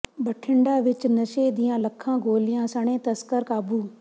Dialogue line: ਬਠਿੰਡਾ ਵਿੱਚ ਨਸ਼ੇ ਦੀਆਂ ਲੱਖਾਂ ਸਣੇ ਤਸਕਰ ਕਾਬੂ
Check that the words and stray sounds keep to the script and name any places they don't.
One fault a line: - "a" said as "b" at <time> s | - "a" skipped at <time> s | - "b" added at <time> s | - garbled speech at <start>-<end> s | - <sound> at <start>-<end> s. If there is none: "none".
- "ਗੋਲੀਆਂ" added at 2.2 s